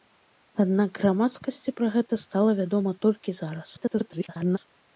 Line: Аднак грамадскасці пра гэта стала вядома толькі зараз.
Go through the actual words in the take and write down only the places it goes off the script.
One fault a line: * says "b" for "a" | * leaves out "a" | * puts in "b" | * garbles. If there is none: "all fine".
* garbles